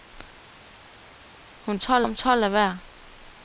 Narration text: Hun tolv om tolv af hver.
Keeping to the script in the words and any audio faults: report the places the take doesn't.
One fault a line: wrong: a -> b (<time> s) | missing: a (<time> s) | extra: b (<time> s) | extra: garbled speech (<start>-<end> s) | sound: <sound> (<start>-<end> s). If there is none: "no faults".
no faults